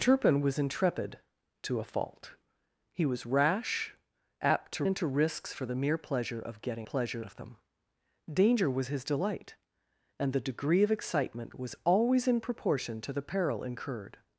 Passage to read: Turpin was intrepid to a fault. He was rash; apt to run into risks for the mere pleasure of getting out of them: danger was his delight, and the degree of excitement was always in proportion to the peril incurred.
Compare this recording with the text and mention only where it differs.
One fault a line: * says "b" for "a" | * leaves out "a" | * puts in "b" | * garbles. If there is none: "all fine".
* leaves out "run"
* says "pleasure" for "out"